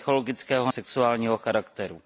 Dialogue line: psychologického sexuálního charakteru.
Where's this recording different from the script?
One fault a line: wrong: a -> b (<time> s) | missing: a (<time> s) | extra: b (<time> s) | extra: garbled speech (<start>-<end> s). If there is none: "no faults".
no faults